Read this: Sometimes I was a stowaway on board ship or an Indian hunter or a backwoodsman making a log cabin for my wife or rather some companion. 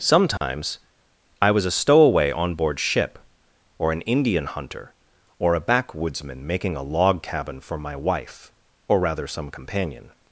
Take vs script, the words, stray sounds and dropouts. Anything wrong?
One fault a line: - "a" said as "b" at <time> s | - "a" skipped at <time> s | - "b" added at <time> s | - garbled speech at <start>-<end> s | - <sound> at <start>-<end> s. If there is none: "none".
- dropout at 0.4-0.4 s